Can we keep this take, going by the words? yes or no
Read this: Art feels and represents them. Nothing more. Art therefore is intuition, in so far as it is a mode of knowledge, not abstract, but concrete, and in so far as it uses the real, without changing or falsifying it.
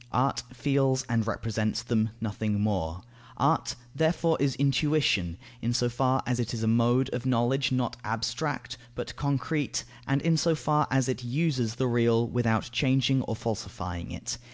yes